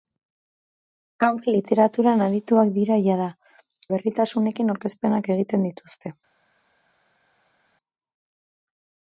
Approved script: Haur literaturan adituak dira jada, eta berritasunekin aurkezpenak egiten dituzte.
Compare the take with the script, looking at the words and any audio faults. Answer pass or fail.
fail